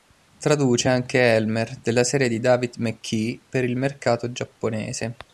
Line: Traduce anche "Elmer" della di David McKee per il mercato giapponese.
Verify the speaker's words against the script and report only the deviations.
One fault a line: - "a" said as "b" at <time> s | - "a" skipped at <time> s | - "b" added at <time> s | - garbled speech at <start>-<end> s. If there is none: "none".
- "serie" added at 2.0 s